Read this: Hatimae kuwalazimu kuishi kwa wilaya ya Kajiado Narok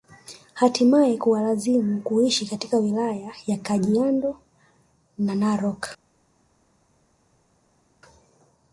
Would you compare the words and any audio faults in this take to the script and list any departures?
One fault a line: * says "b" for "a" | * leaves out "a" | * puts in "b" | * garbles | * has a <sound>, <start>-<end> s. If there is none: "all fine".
* says "katika" for "kwa"
* puts in "na"